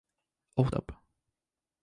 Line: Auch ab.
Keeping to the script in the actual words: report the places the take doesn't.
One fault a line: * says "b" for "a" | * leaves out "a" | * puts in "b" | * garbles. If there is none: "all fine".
all fine